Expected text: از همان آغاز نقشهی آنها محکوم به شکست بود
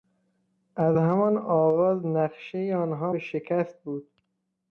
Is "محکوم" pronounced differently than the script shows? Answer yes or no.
yes